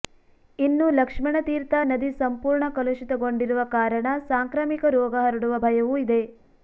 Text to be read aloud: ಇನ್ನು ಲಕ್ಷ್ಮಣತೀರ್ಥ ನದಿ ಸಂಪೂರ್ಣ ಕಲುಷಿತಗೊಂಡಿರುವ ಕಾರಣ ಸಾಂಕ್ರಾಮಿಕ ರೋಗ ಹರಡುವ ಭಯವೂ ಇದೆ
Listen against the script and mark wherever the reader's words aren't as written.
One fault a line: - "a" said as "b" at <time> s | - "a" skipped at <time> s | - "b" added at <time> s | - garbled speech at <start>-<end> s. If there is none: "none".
none